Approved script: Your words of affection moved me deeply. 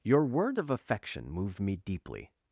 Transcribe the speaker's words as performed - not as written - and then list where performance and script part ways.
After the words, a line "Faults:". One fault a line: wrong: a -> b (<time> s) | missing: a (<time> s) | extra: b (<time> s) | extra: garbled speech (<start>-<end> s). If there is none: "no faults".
Your words of affection moved me deeply.
Faults:
no faults